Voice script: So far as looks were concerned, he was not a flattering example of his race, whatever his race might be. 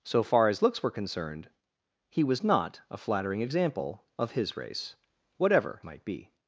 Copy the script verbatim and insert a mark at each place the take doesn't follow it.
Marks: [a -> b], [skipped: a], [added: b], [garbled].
So far as looks were concerned, he was not a flattering example of his race, whatever [skipped: his race] might be.